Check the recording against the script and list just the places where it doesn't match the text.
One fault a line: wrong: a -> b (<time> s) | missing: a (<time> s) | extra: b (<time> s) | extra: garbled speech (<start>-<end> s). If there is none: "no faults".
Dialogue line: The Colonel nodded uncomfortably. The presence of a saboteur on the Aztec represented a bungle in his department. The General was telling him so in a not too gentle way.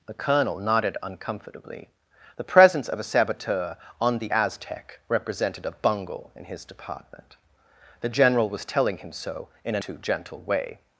missing: not (9.8 s)